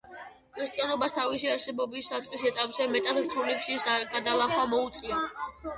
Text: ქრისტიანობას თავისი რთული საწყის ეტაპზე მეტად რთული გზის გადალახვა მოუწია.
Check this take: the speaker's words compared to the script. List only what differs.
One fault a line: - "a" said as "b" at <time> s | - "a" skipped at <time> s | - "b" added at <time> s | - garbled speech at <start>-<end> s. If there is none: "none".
- "რთული" said as "არსებობის" at 1.6 s